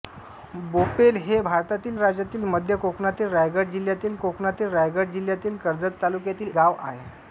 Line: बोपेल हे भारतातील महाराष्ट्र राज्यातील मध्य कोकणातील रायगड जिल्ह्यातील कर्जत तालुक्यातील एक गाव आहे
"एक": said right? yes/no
no